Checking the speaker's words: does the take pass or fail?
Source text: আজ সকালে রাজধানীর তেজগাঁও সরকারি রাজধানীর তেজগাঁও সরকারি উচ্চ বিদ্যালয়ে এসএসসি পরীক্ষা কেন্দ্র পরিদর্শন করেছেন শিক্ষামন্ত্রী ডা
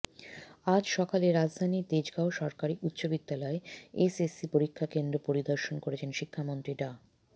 fail